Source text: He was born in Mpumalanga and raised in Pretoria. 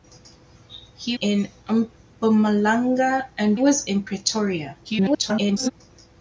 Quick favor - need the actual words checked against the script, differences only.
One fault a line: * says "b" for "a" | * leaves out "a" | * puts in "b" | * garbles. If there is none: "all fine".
* leaves out "was born"
* says "was" for "raised"
* garbles